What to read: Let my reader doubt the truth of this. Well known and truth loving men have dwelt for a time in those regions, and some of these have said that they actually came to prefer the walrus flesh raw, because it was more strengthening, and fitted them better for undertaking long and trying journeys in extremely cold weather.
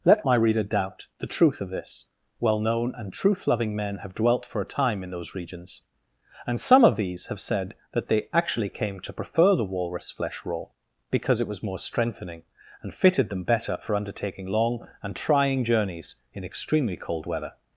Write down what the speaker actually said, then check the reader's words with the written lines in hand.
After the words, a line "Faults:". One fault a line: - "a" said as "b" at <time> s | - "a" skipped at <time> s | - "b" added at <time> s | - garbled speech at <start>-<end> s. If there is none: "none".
Let my reader doubt the truth of this. Well known and truth loving men have dwelt for a time in those regions, and some of these have said that they actually came to prefer the walrus flesh raw, because it was more strengthening, and fitted them better for undertaking long and trying journeys in extremely cold weather.
Faults:
none